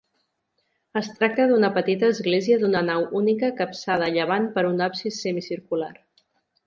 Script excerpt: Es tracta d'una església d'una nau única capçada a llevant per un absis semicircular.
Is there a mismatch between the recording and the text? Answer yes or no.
yes